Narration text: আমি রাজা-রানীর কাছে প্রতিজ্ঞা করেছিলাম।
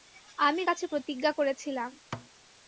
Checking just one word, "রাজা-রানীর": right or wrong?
wrong